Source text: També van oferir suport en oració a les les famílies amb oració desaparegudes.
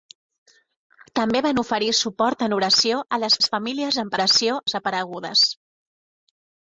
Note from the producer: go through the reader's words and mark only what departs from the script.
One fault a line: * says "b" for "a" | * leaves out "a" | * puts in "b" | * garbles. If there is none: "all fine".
all fine